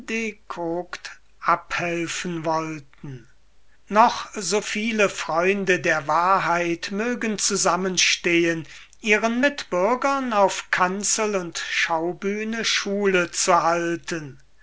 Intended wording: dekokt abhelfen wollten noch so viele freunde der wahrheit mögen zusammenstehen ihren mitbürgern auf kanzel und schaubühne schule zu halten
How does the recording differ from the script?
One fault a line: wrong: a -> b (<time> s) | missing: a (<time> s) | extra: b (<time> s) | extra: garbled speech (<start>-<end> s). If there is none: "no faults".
no faults